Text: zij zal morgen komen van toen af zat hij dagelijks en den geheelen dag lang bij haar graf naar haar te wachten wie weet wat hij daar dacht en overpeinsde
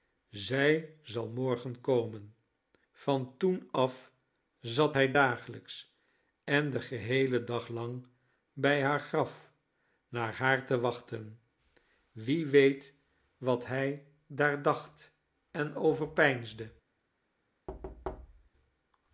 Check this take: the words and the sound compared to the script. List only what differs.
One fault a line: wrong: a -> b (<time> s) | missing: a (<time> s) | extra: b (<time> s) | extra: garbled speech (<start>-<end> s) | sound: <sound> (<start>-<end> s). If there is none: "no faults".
sound: thud (17.7-18.5 s)